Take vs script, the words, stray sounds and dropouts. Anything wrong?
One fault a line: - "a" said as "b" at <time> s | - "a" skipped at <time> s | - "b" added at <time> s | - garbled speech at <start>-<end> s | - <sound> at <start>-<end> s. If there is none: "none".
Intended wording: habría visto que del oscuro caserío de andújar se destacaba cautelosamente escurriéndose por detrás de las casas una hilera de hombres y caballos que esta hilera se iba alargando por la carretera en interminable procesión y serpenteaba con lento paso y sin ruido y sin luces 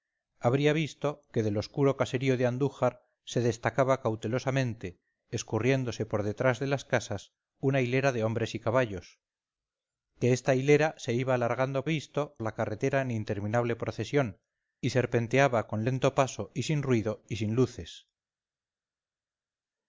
- "por" said as "visto" at 11.9 s